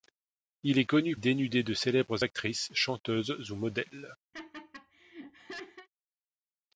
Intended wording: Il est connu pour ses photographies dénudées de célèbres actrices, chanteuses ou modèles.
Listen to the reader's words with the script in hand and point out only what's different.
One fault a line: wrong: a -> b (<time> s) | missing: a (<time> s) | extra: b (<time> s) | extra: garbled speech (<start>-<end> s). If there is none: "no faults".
missing: pour ses photographies (1.1 s)